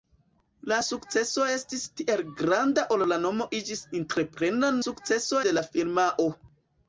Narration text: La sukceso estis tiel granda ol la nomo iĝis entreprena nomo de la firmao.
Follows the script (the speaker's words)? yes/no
no